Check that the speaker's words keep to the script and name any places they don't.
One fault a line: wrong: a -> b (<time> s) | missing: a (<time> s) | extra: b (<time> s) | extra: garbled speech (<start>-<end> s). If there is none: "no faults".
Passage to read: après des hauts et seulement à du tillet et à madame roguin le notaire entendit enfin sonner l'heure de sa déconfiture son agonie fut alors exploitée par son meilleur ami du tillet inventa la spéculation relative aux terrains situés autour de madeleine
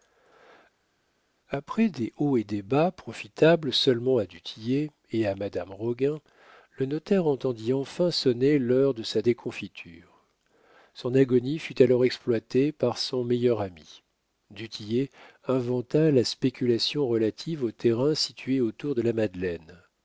extra: des bas profitables (2.4 s)
extra: la (19.0 s)